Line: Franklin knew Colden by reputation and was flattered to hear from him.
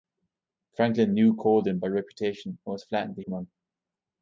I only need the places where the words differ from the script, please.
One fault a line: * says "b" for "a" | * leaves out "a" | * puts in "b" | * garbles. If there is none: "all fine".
* leaves out "hear"